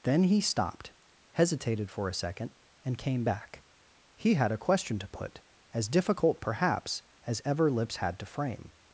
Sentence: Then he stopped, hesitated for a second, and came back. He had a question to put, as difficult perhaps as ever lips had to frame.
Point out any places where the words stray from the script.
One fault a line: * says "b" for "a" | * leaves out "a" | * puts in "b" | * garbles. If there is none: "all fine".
all fine